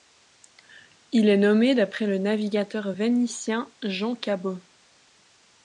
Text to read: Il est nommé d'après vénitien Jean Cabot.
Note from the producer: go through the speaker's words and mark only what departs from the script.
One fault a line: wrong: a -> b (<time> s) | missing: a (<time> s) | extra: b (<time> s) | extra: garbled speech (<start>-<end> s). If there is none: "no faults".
extra: le navigateur (2.1 s)